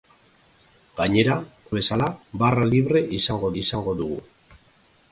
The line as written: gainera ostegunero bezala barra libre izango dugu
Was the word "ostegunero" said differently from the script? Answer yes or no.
yes